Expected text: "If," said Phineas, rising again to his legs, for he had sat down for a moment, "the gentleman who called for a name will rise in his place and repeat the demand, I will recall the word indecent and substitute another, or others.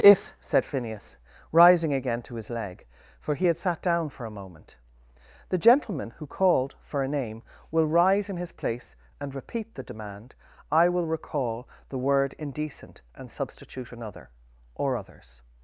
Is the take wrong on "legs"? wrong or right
wrong